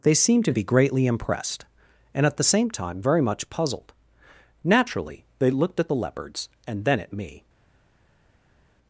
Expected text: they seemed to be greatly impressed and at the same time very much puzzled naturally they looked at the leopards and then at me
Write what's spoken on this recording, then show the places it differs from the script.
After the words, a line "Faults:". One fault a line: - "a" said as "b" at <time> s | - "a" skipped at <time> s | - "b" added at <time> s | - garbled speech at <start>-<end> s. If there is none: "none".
they seemed to be greatly impressed and at the same time very much puzzled naturally they looked at the leopards and then at me
Faults:
none